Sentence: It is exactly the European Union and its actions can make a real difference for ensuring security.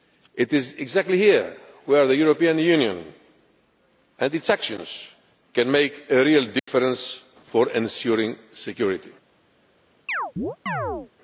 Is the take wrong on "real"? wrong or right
right